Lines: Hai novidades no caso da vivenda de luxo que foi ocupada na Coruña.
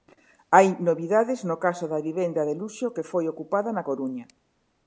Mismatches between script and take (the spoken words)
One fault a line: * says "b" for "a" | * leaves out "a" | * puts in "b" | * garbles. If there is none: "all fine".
all fine